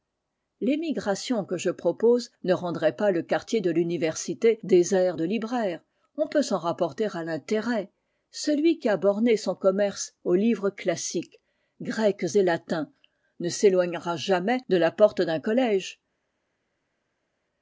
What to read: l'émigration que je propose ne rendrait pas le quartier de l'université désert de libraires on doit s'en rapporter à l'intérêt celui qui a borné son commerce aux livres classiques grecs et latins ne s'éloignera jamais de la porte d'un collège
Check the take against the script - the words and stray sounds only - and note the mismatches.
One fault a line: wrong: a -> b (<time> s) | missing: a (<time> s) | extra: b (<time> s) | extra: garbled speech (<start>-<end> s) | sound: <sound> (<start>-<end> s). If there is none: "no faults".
wrong: doit -> peut (6.3 s)